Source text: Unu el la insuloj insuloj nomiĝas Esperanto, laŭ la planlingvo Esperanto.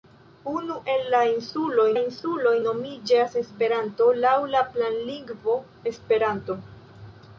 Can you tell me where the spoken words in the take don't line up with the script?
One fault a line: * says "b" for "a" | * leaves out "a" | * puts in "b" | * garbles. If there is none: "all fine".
all fine